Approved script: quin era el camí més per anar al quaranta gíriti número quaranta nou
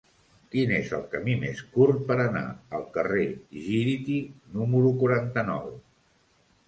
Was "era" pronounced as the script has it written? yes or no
no